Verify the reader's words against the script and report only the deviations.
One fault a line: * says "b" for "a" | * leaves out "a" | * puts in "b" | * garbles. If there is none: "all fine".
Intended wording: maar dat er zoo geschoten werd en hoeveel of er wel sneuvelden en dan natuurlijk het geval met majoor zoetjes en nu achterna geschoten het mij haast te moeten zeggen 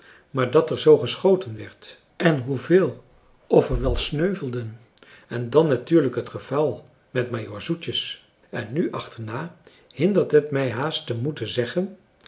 * says "hindert" for "geschoten"